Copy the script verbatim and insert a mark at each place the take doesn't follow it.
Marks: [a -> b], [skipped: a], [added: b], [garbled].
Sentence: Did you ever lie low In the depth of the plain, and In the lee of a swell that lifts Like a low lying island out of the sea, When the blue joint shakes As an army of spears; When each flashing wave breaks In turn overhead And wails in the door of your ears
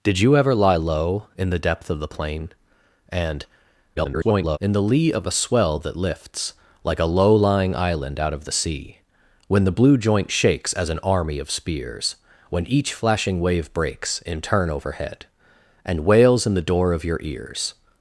Did you ever lie low In the depth of the plain, and [garbled] In the lee of a swell that lifts Like a low lying island out of the sea, When the blue joint shakes As an army of spears; When each flashing wave breaks In turn overhead And wails in the door of your ears